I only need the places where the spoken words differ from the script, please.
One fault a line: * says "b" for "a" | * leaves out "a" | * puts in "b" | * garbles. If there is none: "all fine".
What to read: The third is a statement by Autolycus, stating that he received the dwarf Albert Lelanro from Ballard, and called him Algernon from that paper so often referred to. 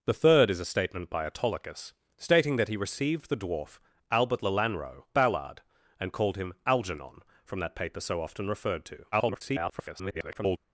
* leaves out "from"
* garbles